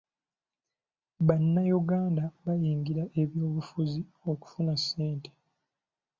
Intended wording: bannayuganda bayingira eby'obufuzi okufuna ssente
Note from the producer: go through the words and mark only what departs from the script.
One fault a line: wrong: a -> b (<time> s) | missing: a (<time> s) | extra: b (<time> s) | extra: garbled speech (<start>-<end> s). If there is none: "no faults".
no faults